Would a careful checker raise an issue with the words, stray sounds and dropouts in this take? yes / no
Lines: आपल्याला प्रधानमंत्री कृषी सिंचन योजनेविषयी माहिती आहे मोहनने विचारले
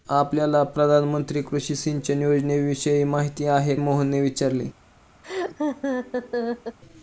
yes